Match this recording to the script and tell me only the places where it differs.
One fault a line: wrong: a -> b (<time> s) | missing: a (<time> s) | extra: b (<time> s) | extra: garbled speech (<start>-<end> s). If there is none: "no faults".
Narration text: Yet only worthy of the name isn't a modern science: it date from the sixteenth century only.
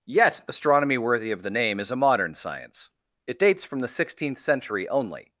wrong: only -> astronomy (0.5 s)
wrong: isn't -> is (1.8 s)
wrong: date -> dates (3.4 s)